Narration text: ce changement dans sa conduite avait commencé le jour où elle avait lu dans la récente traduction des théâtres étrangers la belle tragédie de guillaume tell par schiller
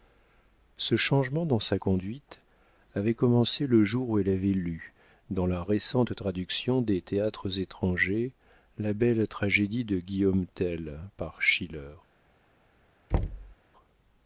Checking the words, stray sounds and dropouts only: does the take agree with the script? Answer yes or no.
no